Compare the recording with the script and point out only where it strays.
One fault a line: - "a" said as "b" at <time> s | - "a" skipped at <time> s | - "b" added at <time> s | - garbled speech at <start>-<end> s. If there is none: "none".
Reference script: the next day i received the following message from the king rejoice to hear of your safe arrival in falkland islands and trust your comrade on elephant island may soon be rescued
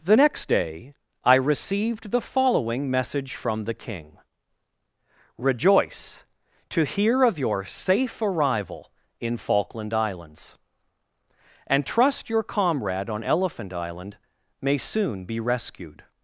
none